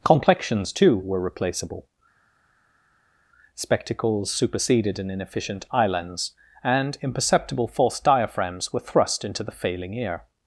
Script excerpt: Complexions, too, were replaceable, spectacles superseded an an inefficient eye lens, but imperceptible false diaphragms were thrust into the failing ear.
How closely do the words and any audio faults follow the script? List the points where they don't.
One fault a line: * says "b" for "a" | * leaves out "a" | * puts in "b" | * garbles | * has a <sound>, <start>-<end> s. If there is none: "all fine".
* leaves out "an"
* says "and" for "but"